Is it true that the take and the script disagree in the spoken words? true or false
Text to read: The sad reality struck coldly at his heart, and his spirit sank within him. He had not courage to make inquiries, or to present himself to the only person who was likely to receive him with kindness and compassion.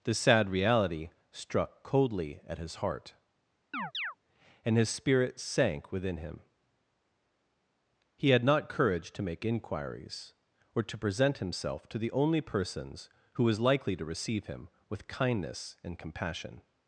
true